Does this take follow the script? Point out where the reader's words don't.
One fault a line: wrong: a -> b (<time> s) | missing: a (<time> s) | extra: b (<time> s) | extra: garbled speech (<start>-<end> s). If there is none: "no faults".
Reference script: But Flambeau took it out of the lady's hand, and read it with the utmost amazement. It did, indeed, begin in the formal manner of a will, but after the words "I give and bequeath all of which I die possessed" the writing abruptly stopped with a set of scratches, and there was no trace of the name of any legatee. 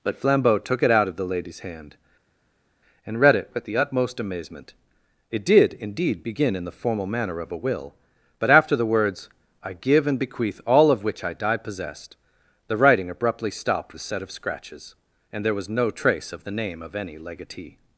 missing: with (13.9 s)